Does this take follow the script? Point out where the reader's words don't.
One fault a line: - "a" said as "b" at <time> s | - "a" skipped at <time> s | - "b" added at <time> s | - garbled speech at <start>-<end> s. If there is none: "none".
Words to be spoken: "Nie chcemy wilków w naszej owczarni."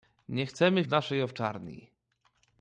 - "wilków" skipped at 0.8 s